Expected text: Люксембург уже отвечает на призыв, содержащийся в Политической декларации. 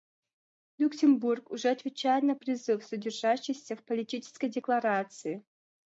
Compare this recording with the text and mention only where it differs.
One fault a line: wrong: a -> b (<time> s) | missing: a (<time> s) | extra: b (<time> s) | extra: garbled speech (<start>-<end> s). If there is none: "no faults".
no faults